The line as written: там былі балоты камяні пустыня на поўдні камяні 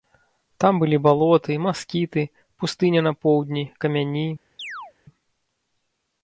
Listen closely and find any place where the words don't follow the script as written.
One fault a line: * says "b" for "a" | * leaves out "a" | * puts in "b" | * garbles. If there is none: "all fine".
* says "маскіты" for "камяні"